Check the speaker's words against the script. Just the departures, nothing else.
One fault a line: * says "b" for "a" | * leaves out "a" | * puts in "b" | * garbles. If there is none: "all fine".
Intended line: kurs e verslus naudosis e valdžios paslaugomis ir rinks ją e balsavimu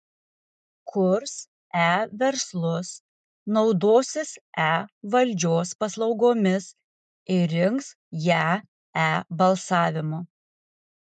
all fine